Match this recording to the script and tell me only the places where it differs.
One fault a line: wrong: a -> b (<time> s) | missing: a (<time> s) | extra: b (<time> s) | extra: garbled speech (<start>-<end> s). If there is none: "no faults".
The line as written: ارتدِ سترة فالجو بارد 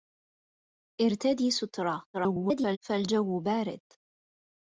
extra: garbled speech (2.1-2.8 s)